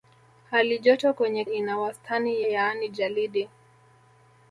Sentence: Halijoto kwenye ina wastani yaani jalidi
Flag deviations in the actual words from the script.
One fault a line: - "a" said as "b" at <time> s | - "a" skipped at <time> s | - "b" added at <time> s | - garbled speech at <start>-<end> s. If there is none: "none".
none